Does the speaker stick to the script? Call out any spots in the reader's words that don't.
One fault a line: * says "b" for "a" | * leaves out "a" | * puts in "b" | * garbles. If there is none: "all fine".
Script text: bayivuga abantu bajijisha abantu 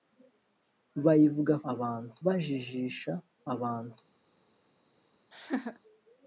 all fine